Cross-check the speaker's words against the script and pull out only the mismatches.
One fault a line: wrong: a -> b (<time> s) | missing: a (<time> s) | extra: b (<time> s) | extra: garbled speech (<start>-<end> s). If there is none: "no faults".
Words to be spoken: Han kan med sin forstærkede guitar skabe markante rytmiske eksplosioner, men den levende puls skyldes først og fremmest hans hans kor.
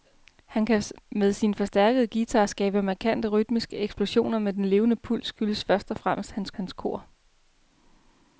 no faults